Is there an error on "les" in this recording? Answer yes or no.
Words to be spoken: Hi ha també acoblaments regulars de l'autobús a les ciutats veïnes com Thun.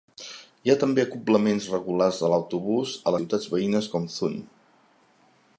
yes